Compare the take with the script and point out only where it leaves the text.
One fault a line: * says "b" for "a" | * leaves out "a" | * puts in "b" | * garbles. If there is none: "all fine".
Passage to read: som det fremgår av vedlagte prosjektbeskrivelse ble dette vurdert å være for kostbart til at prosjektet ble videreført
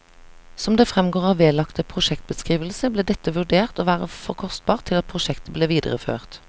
all fine